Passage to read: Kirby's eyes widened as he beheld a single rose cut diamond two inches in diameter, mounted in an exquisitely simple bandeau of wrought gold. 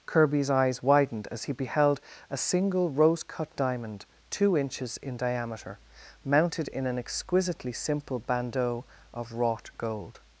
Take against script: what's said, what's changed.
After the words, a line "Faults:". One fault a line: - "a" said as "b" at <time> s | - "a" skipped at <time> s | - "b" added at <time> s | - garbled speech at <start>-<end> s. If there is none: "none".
Kirby's eyes widened as he beheld a single rose cut diamond two inches in diameter, mounted in an exquisitely simple bandeau of wrought gold.
Faults:
none